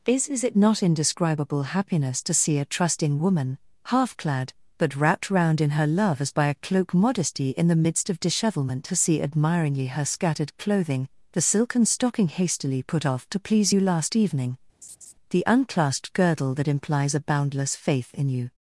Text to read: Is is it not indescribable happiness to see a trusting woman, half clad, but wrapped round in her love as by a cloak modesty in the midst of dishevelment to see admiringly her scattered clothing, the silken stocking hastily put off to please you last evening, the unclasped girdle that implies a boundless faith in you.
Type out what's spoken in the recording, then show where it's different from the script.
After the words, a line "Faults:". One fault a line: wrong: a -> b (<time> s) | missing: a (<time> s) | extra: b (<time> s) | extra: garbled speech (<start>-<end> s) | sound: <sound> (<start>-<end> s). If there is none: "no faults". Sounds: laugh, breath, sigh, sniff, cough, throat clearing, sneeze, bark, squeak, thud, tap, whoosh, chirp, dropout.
Is is it not indescribable happiness to see a trusting woman, half clad, but wrapped round in her love as by a cloak modesty in the midst of dishevelment to see admiringly her scattered clothing, the silken stocking hastily put off to please you last evening, the unclasped girdle that implies a boundless faith in you.
Faults:
sound: laugh (14.8-15.1 s)